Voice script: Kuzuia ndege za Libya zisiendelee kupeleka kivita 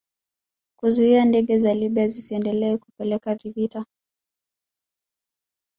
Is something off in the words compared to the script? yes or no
no